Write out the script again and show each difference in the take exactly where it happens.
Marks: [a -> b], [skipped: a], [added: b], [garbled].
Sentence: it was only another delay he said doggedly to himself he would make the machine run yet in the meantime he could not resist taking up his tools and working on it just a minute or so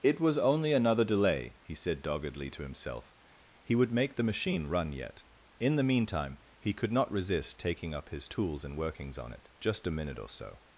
it was only another delay he said doggedly to himself he would make the machine run yet in the meantime he could not resist taking up his tools and [working -> workings] on it just a minute or so